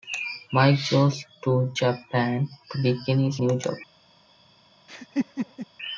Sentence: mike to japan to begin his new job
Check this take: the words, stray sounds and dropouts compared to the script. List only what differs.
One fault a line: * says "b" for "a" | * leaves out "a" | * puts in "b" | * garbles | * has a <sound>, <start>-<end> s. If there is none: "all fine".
* puts in "goes"
* has a laugh, 4.9-5.7 s